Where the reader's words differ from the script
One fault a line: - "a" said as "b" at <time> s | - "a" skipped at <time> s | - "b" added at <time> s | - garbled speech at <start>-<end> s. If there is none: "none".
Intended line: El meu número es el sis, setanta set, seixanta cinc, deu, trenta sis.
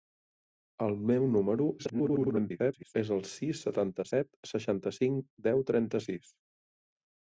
- garbled speech at 1.8-2.9 s